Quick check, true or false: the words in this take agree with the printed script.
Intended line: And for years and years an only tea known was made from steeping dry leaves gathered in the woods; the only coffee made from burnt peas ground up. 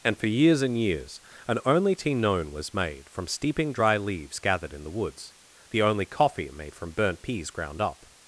true